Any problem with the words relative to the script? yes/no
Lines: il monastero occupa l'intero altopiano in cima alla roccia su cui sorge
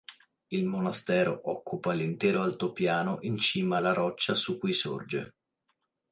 no